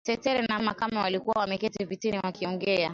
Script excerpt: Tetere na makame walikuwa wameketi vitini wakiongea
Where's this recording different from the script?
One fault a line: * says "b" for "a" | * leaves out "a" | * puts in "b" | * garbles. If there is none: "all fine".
all fine